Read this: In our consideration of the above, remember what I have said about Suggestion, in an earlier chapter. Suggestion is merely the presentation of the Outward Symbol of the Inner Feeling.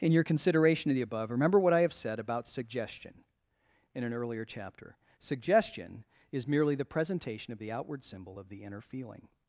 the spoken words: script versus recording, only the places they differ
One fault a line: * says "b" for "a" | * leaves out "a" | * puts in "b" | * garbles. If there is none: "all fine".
* says "your" for "our"